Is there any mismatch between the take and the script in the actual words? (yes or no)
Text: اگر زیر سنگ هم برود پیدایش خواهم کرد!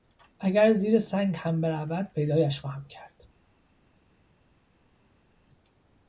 no